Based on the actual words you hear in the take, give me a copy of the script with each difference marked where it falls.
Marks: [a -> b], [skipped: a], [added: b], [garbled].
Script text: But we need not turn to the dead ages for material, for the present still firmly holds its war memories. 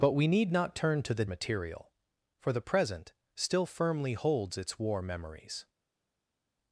But we need not turn to the [skipped: dead ages for] material, for the present still firmly holds its war memories.